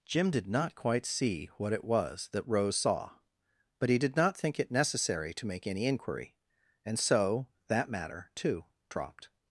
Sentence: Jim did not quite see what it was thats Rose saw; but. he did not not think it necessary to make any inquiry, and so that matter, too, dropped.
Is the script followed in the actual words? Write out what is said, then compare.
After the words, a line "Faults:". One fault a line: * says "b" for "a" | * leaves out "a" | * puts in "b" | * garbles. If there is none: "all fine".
Jim did not quite see what it was that Rose saw; but. he did not think it necessary to make any inquiry, and so that matter, too, dropped.
Faults:
* says "that" for "thats"
* leaves out "not"